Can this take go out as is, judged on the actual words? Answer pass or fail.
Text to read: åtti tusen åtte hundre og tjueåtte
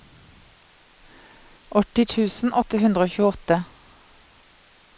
pass